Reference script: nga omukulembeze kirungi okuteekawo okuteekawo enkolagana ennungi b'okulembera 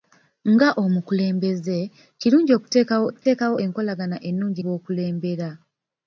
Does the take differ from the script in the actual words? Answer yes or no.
no